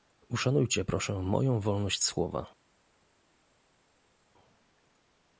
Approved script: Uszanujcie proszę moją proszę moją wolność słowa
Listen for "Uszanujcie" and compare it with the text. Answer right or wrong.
right